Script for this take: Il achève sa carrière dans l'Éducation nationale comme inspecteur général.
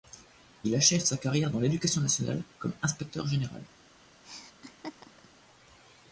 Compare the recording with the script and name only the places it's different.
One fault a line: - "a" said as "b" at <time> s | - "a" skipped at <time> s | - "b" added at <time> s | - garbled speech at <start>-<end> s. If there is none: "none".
none